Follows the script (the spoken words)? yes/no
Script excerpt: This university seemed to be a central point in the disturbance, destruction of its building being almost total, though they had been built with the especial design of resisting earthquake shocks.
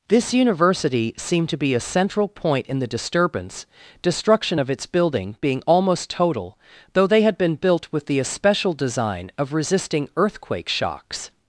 yes